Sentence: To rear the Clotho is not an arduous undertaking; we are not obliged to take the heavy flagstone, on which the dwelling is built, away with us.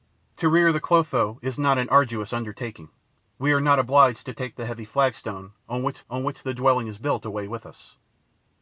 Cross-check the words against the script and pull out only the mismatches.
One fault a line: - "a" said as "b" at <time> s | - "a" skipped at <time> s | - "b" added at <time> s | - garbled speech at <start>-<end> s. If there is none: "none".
- "on which" added at 6.1 s